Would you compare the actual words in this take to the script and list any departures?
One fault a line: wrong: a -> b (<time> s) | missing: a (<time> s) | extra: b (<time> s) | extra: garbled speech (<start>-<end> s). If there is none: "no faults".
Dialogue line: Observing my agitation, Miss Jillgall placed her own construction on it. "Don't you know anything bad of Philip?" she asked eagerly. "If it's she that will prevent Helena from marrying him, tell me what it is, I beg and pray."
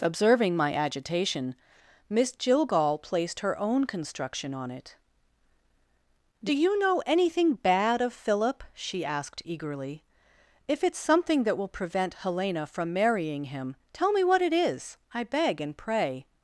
wrong: Don't -> Do (6.4 s)
wrong: she -> something (11.0 s)